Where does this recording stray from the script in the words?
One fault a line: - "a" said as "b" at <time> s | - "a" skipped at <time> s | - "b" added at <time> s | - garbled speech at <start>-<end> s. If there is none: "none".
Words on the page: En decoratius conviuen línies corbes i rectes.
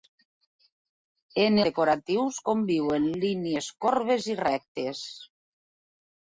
none